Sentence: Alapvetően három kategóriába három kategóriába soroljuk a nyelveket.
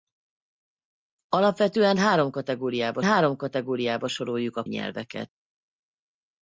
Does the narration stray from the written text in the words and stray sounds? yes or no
no